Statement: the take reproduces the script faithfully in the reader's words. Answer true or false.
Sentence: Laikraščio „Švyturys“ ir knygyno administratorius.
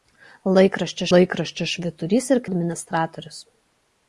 false